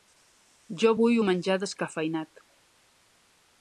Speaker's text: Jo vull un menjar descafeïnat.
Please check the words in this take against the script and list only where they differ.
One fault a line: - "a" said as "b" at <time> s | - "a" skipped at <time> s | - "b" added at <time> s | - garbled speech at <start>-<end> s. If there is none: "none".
none